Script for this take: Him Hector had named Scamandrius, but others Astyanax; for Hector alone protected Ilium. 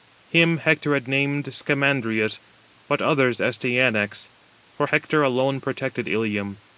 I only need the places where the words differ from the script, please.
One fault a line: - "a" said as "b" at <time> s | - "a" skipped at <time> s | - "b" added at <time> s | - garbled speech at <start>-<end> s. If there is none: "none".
none